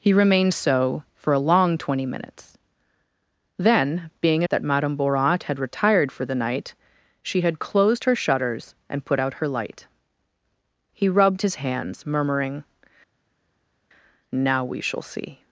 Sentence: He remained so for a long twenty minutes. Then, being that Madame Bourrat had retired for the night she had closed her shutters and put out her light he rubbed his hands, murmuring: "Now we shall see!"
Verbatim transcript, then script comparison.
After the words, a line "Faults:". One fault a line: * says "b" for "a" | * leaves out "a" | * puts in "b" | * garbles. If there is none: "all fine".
He remained so for a long twenty minutes. Then, being that Madame Bourrat had retired for the night she had closed her shutters and put out her light he rubbed his hands, murmuring: "Now we shall see!"
Faults:
all fine